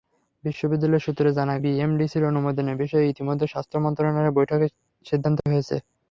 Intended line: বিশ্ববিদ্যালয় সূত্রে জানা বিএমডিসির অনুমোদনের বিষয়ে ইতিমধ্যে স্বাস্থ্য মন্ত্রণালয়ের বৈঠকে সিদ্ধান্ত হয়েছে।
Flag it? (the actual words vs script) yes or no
no